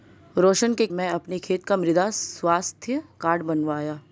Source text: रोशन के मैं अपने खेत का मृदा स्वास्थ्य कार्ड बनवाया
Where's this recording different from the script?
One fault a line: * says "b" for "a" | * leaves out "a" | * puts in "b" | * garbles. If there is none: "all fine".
all fine